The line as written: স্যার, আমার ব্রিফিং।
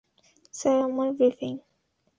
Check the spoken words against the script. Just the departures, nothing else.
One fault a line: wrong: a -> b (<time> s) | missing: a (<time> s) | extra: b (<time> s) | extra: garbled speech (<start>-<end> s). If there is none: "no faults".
no faults